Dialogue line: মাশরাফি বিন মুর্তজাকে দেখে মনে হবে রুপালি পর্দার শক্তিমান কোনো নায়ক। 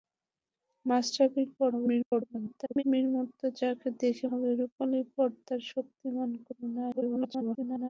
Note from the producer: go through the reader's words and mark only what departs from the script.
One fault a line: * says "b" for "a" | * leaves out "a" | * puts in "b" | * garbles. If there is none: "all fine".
* garbles
* leaves out "মনে"
* garbles